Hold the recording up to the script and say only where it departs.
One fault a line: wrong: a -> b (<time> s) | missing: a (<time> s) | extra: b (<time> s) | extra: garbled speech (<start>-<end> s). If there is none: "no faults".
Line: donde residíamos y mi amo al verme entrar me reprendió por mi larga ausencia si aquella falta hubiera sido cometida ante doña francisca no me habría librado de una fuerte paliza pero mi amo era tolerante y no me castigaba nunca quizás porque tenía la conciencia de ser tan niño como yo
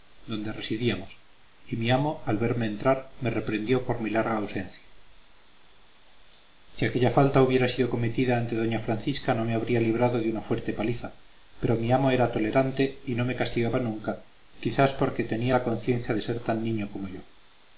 no faults